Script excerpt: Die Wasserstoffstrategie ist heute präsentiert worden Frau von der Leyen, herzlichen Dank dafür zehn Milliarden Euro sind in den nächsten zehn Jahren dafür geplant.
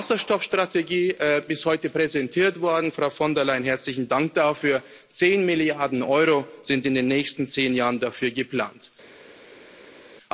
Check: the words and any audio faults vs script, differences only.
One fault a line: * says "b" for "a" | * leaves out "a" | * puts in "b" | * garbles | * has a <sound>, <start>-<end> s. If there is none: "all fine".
all fine